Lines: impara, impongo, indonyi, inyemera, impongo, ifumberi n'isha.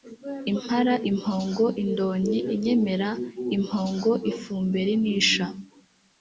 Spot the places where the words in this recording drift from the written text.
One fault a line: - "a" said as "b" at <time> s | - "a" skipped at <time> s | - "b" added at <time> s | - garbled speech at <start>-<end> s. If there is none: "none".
none